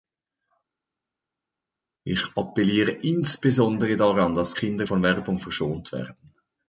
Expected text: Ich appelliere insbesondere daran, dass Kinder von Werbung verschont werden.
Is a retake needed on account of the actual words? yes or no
no